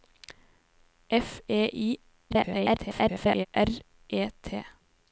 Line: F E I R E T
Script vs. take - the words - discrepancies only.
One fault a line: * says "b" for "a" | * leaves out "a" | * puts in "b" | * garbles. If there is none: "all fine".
* garbles